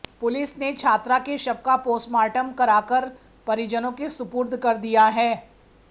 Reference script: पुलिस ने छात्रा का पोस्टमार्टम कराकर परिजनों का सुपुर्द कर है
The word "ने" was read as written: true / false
true